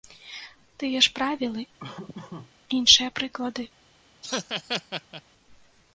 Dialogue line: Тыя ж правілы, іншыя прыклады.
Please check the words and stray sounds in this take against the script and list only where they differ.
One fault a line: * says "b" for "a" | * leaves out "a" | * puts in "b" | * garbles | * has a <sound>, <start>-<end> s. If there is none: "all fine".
* has a laugh, 1.8-2.5 s
* has a laugh, 4.2-5.2 s